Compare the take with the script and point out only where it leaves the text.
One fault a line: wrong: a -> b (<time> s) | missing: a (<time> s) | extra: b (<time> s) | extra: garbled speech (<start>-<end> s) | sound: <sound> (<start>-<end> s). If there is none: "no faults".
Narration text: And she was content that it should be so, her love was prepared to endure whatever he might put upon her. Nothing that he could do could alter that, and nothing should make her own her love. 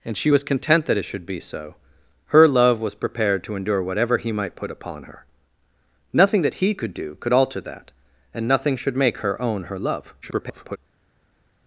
extra: garbled speech (10.2-10.8 s)